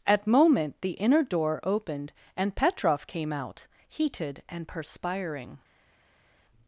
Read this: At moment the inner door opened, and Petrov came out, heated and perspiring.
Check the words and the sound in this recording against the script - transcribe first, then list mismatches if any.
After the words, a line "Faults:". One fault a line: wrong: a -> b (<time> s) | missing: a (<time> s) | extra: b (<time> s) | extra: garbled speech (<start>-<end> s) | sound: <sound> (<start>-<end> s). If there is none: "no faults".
At moment the inner door opened, and Petrov came out, heated and perspiring.
Faults:
no faults